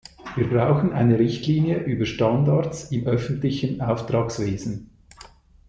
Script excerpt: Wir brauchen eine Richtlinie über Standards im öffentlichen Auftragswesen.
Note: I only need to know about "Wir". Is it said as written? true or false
true